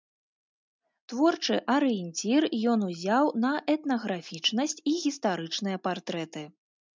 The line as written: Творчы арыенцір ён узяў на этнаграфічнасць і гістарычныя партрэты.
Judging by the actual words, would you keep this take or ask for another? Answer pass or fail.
pass